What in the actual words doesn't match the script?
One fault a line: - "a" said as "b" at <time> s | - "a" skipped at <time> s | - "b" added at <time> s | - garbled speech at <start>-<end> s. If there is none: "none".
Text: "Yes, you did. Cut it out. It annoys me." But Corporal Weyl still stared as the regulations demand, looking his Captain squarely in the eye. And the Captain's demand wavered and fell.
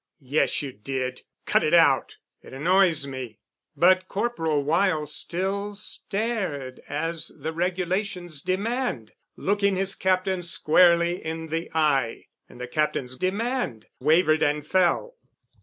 none